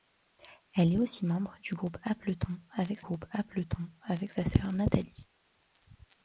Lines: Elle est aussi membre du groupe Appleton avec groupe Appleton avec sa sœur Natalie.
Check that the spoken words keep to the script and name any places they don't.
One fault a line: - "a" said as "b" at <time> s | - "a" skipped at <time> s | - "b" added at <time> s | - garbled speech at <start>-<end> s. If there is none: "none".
none